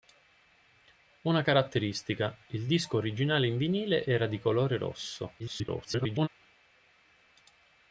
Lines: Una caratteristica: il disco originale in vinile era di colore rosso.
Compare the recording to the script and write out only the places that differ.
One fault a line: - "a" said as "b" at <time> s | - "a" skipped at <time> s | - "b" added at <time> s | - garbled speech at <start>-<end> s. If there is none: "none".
- garbled speech at 5.4-6.3 s